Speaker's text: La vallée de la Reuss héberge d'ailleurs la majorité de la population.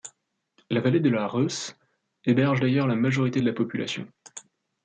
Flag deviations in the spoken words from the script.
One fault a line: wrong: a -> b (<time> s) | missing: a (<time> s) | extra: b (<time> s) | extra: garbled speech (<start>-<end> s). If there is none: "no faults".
no faults